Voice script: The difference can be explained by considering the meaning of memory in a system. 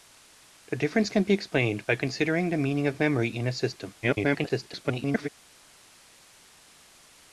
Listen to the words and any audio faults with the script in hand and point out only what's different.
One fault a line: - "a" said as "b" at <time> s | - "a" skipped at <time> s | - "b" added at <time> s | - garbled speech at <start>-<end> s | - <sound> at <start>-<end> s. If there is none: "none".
- garbled speech at 4.0-5.3 s